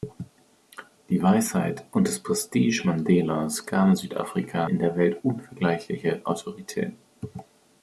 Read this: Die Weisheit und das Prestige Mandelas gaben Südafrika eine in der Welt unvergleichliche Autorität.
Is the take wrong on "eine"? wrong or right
wrong